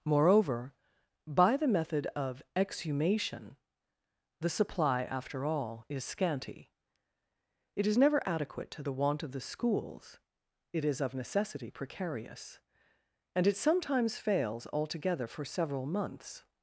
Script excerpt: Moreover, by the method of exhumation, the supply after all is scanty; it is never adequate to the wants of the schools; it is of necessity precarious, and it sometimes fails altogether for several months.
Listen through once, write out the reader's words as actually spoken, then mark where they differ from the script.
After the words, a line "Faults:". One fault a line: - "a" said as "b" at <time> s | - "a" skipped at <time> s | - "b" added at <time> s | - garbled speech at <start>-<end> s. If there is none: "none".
Moreover, by the method of exhumation, the supply after all is scanty; it is never adequate to the want of the schools; it is of necessity precarious, and it sometimes fails altogether for several months.
Faults:
- "wants" said as "want" at 8.9 s